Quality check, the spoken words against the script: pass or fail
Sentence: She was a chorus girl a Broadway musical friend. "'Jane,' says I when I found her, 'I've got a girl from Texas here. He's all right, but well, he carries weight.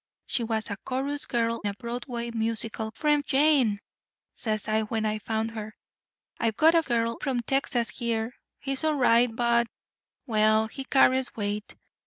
pass